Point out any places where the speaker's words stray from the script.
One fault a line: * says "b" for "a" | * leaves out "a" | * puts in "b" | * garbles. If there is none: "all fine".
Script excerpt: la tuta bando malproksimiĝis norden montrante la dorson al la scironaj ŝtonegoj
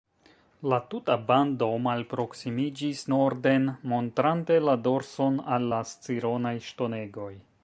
all fine